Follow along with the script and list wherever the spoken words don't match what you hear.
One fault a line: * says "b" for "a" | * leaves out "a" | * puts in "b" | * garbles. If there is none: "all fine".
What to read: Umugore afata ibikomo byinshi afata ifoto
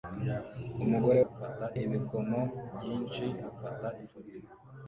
all fine